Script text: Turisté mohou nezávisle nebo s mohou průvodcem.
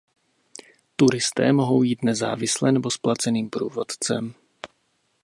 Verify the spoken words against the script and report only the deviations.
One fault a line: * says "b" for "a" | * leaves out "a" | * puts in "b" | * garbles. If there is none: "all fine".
* puts in "jít"
* says "placeným" for "mohou"